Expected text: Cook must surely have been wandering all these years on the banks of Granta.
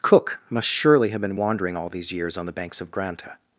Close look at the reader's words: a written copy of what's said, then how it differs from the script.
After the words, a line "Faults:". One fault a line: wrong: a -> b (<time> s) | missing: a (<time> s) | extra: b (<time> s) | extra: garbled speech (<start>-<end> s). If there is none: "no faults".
Cook must surely have been wandering all these years on the banks of Granta.
Faults:
no faults